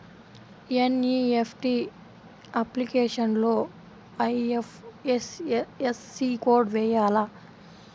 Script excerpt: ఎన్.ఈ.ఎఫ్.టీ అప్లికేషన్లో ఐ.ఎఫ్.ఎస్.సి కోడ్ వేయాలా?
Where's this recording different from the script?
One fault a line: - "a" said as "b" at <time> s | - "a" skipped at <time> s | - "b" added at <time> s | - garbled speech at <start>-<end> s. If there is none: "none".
none